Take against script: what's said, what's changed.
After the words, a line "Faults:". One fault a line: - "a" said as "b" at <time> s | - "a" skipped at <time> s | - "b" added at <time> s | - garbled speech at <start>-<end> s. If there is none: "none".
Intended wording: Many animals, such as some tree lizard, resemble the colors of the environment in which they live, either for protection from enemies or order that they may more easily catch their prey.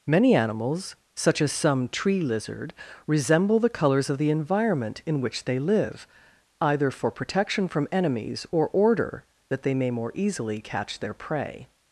Many animals, such as some tree lizard, resemble the colors of the environment in which they live, either for protection from enemies or order that they may more easily catch their prey.
Faults:
none